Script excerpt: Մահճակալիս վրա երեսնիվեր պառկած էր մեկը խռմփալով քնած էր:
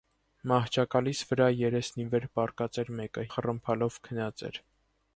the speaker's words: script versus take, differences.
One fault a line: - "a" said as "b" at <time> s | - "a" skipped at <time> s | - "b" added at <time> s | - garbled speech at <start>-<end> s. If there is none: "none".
none